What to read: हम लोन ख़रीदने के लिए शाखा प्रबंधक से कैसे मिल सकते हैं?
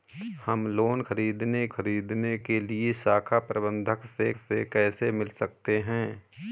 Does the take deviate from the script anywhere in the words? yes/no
yes